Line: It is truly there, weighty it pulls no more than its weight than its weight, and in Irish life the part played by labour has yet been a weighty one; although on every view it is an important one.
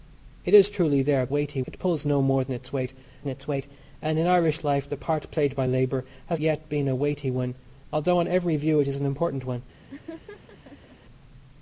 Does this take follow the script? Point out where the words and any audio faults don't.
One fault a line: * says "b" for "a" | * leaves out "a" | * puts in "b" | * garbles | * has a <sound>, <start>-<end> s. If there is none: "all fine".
* has a laugh, 9.9-11.0 s